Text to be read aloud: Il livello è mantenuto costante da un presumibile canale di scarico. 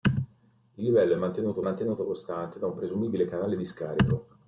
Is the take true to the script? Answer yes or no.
no